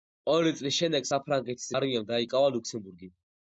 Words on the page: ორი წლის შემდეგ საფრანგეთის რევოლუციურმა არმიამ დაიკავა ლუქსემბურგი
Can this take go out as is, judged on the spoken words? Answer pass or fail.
fail